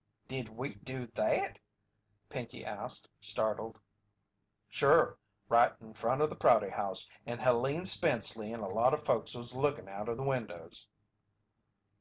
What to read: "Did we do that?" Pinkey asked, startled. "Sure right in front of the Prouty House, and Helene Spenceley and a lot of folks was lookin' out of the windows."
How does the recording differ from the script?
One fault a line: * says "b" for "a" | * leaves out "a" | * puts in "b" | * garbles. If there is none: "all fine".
all fine